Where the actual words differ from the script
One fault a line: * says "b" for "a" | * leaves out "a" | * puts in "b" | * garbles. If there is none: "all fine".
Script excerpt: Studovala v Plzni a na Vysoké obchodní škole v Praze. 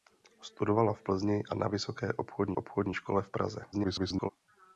* puts in "obchodní"
* garbles